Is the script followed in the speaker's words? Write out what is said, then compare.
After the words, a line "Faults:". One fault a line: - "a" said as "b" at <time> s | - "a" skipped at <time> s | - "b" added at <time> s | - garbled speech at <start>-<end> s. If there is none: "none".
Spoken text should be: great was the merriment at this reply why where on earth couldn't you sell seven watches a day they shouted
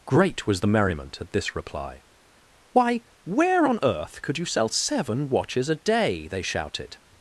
great was the merriment at this reply why where on earth could you sell seven watches a day they shouted
Faults:
- "couldn't" said as "could" at 4.2 s